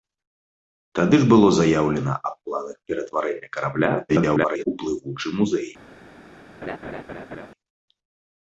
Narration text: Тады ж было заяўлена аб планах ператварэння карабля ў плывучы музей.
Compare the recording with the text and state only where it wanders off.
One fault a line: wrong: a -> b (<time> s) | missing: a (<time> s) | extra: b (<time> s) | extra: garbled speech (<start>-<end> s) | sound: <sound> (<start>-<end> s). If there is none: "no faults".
extra: garbled speech (4.1-4.6 s)
sound: laugh (6.6-7.5 s)